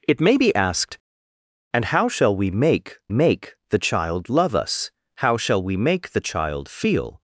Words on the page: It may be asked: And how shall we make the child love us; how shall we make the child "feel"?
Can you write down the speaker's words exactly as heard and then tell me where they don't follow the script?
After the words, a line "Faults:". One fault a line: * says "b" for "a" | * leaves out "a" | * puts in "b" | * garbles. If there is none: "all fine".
It may be asked: And how shall we make make the child love us; how shall we make the child "feel"?
Faults:
* puts in "make"